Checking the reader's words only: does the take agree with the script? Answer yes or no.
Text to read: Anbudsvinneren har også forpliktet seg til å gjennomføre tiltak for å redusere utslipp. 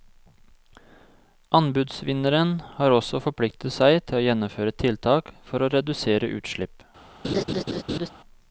yes